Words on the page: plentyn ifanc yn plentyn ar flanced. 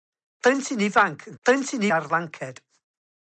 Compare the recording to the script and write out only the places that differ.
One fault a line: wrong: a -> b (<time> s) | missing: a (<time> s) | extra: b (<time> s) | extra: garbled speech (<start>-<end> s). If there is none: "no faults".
no faults